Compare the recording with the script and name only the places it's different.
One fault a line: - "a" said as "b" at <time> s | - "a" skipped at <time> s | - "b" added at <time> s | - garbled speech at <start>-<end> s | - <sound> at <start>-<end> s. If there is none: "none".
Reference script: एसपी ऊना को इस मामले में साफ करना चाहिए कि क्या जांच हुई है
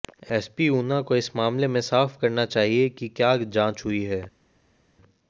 none